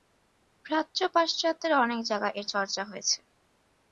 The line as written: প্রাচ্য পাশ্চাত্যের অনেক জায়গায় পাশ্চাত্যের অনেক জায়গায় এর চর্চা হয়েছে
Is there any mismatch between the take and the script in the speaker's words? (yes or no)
yes